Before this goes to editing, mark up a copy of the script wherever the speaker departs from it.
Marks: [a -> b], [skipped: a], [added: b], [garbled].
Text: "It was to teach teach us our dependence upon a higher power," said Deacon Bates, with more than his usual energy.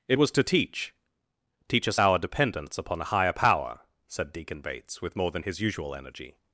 "It was to teach teach us our dependence upon a higher power," said Deacon Bates, with more than his usual energy.